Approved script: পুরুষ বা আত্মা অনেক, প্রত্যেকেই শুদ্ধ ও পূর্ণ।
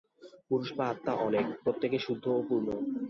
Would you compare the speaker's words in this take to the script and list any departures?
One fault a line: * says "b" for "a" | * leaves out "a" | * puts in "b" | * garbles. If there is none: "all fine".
all fine